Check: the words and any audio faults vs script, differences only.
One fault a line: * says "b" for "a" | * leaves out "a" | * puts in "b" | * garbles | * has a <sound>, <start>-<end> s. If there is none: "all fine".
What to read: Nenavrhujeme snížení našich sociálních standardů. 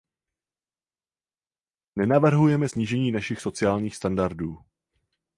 all fine